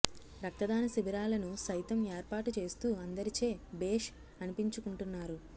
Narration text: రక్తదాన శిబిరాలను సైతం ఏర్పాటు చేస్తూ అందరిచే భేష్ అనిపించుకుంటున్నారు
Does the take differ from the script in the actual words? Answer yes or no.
no